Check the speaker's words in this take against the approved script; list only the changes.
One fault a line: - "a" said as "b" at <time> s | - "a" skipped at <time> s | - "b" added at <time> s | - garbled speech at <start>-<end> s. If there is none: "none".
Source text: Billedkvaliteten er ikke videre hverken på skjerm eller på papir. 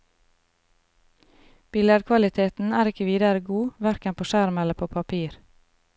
- "god" added at 3.5 s